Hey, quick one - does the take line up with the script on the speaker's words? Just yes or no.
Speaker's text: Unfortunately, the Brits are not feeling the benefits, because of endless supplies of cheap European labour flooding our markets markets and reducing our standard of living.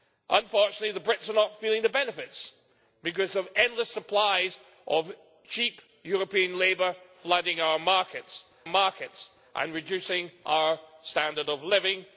yes